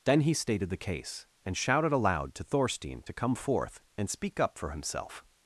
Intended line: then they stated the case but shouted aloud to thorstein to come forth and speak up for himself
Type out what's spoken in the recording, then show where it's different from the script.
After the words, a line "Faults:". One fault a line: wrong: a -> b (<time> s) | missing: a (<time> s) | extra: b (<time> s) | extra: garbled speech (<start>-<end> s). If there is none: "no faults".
then he stated the case and shouted aloud to thorstein to come forth and speak up for himself
Faults:
wrong: they -> he (0.2 s)
wrong: but -> and (1.4 s)